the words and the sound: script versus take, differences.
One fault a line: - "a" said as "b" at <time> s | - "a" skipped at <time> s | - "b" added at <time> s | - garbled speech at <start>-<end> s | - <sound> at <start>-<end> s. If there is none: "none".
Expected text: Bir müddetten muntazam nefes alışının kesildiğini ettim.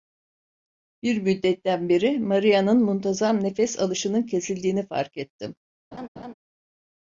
- "beri Maria'nın" added at 1.9 s
- "fark" added at 4.9 s
- laugh at 5.9-6.3 s